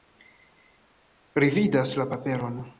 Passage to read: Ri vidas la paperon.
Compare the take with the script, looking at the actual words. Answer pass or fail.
pass